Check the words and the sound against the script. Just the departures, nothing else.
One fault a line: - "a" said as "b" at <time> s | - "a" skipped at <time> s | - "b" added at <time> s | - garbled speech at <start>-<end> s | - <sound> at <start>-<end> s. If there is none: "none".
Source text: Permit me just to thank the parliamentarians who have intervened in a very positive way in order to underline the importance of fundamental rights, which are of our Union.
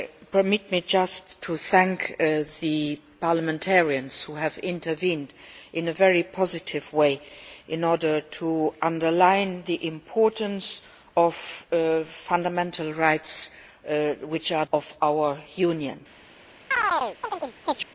- chirp at 16.7-17.9 s